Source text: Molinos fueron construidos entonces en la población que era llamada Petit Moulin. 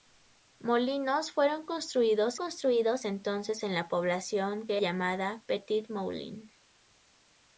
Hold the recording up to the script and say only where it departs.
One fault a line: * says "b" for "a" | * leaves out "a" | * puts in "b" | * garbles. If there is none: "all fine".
* puts in "construidos"
* leaves out "era"